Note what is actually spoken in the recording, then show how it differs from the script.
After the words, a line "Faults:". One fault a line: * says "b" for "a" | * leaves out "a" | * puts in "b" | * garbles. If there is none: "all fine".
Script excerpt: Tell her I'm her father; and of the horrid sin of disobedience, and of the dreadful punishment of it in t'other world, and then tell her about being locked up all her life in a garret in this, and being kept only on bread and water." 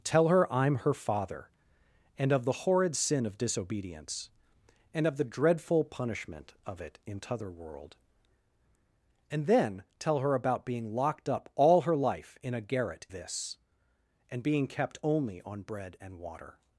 Tell her I'm her father; and of the horrid sin of disobedience, and of the dreadful punishment of it in t'other world, and then tell her about being locked up all her life in a garret this, and being kept only on bread and water."
Faults:
* leaves out "in"